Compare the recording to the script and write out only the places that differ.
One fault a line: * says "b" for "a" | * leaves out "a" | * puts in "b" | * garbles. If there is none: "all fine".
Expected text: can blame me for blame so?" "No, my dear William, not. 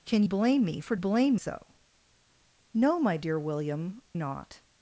all fine